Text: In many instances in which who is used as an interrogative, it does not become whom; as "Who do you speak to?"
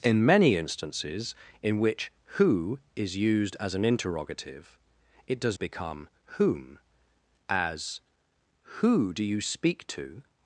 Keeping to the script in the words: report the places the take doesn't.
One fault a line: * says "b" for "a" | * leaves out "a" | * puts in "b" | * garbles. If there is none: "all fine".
* leaves out "not"